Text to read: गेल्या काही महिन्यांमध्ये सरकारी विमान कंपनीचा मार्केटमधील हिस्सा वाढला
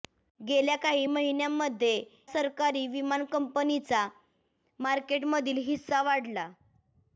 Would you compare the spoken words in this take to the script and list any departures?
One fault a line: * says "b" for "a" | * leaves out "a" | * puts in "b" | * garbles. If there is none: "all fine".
all fine